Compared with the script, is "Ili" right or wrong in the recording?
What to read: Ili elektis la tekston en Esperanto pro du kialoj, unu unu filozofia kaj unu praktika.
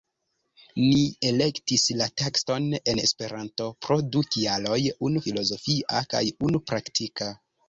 wrong